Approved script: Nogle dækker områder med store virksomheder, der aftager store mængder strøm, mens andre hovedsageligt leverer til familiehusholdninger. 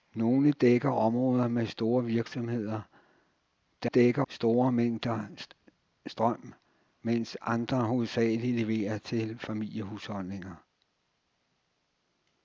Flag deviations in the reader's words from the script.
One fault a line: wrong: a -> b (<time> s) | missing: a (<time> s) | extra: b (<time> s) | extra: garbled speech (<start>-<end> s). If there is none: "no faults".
wrong: aftager -> dækker (3.8 s)